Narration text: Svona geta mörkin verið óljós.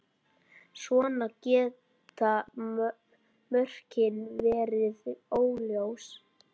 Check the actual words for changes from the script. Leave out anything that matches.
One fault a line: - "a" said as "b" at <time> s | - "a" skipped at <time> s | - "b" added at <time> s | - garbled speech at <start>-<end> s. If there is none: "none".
none